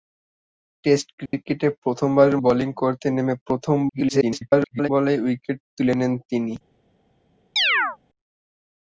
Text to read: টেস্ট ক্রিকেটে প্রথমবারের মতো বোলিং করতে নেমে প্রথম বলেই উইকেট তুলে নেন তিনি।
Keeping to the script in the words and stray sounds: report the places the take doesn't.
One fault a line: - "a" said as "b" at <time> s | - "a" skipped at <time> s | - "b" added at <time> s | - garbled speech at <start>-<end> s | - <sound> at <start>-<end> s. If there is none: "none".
- dropout at 1.3-1.3 s
- "মতো" skipped at 2.4 s
- garbled speech at 3.9-4.9 s
- chirp at 7.6-8.0 s